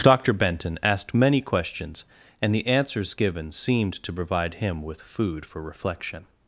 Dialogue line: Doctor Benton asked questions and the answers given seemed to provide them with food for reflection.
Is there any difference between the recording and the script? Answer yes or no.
yes